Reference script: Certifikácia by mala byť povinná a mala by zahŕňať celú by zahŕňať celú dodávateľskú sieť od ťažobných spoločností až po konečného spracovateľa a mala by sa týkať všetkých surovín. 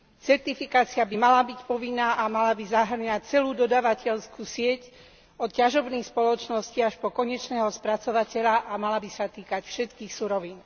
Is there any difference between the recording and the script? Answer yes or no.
yes